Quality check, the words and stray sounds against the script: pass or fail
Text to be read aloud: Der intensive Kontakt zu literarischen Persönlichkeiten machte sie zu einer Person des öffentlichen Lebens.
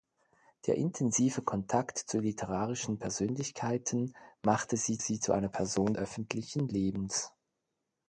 fail